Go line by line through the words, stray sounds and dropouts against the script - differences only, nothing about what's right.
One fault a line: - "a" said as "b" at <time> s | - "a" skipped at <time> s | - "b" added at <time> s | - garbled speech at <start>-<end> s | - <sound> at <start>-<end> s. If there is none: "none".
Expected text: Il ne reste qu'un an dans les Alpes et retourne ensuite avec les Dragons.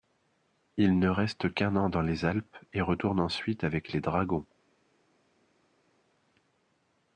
none